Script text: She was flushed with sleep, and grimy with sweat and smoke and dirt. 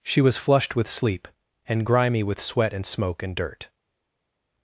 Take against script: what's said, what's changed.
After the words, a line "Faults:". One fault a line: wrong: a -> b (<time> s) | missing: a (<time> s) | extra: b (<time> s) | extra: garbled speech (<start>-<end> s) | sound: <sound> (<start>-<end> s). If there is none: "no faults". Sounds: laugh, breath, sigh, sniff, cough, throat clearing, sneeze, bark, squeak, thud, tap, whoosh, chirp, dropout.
She was flushed with sleep, and grimy with sweat and smoke and dirt.
Faults:
no faults